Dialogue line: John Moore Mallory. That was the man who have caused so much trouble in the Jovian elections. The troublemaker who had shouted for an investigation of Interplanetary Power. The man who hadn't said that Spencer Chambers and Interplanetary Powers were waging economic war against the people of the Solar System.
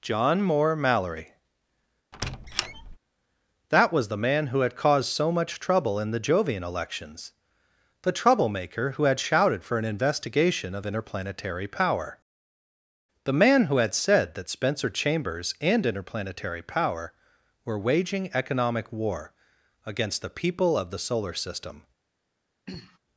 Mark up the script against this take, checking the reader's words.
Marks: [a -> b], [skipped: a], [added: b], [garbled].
John Moore Mallory. That was the man who [have -> had] caused so much trouble in the Jovian elections. The troublemaker who had shouted for an investigation of Interplanetary Power. The man who [hadn't -> had] said that Spencer Chambers and Interplanetary [Powers -> Power] were waging economic war against the people of the Solar System.